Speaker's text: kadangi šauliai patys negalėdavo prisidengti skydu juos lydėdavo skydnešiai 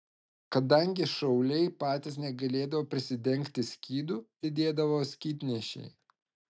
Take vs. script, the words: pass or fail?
fail